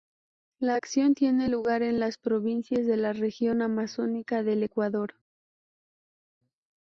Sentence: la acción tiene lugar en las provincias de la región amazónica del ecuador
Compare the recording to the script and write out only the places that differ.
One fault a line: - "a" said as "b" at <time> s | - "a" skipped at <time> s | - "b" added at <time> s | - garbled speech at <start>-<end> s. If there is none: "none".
none